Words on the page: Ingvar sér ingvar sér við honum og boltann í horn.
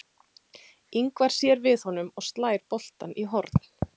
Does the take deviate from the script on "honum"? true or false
false